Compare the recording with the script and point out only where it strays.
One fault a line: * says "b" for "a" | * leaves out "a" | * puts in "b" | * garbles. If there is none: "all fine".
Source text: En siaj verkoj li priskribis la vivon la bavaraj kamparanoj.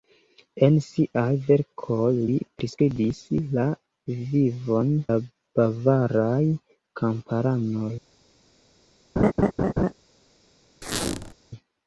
all fine